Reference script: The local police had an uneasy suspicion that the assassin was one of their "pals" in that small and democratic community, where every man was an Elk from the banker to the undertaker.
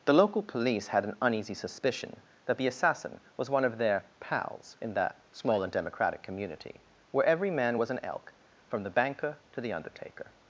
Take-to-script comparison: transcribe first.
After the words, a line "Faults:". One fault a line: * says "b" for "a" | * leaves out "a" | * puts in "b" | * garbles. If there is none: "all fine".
The local police had an uneasy suspicion that the assassin was one of their "pals" in that small and democratic community, where every man was an Elk from the banker to the undertaker.
Faults:
all fine